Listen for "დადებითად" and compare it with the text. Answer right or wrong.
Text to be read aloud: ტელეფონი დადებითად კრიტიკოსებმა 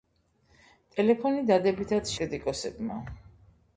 right